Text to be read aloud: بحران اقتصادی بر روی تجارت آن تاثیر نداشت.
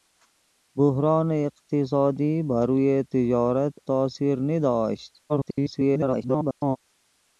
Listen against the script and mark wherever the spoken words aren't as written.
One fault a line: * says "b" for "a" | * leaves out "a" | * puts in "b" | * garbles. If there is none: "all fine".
* leaves out "آن"
* garbles